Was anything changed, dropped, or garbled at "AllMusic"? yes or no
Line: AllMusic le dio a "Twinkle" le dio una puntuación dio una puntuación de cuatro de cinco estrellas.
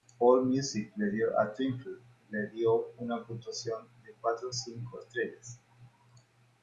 no